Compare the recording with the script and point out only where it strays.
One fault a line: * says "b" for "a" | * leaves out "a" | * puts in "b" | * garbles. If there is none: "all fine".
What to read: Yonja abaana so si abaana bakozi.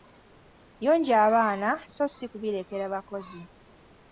* says "kubirekera" for "abaana"